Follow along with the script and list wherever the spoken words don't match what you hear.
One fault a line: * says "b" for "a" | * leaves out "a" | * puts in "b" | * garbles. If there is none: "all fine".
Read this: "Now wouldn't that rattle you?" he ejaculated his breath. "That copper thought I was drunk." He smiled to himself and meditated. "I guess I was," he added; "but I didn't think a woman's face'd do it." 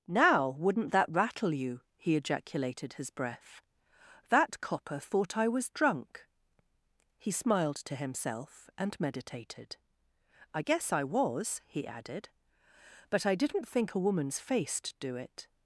all fine